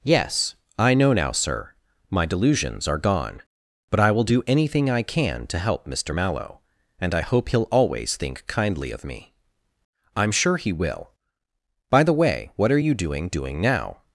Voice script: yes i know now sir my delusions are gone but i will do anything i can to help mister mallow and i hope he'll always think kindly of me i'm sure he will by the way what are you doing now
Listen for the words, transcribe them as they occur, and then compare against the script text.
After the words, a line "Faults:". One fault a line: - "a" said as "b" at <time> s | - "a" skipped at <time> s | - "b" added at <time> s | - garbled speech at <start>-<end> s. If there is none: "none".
yes i know now sir my delusions are gone but i will do anything i can to help mister mallow and i hope he'll always think kindly of me i'm sure he will by the way what are you doing doing now
Faults:
- "doing" added at 13.3 s